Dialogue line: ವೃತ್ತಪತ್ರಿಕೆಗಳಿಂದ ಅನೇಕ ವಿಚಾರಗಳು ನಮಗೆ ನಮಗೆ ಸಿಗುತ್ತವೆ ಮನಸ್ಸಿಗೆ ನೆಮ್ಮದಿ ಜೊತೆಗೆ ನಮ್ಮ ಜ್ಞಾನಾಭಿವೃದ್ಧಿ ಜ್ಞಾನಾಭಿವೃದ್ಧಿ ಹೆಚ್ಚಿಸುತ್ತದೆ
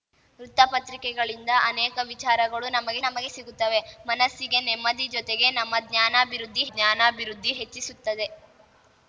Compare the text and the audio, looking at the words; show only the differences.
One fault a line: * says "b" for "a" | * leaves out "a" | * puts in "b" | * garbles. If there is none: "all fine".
all fine